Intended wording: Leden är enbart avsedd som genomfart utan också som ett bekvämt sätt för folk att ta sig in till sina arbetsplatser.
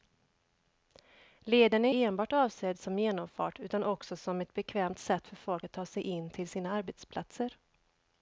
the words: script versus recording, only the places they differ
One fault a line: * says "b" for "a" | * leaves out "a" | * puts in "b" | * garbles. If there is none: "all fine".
all fine